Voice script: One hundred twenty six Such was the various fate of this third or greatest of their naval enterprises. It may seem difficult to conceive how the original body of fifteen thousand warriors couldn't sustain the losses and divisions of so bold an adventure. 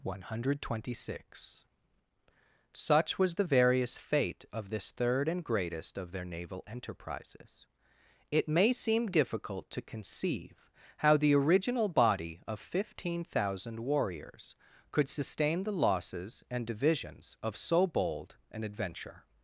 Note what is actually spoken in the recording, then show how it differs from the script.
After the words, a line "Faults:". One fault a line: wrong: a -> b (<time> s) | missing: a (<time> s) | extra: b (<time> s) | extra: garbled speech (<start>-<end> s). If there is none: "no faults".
One hundred twenty six Such was the various fate of this third and greatest of their naval enterprises. It may seem difficult to conceive how the original body of fifteen thousand warriors could sustain the losses and divisions of so bold an adventure.
Faults:
wrong: or -> and (5.3 s)
wrong: couldn't -> could (14.9 s)